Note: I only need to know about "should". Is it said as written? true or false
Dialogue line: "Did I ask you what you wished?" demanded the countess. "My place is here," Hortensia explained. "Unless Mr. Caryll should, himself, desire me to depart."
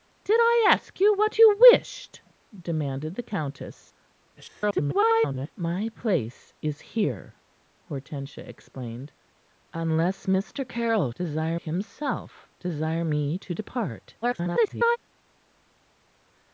false